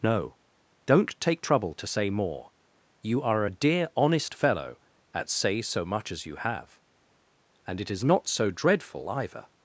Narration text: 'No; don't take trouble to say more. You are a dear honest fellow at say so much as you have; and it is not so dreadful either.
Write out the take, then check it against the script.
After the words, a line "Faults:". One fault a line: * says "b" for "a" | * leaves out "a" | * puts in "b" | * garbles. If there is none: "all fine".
'No; don't take trouble to say more. You are a dear honest fellow at say so much as you have; and it is not so dreadful either.
Faults:
all fine